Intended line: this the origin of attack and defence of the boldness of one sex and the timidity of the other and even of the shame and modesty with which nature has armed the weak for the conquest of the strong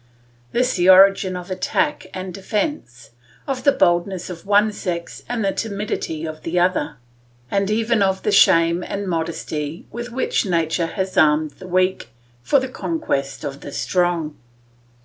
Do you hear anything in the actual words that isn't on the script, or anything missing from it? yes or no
no